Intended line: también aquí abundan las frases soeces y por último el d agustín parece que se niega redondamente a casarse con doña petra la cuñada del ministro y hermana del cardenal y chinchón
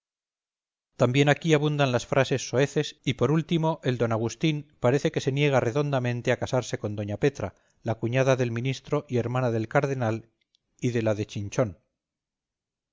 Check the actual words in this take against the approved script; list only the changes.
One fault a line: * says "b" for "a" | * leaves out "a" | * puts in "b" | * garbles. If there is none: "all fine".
* puts in "de la de"